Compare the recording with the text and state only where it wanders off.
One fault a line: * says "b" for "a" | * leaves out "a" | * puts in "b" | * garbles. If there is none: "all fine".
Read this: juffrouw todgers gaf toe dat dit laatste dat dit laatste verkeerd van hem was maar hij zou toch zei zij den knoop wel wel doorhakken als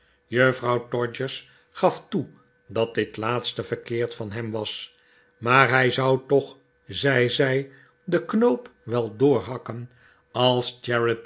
* leaves out "dat dit laatste"
* leaves out "wel"